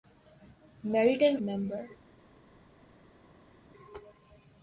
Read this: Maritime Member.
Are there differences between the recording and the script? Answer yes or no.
no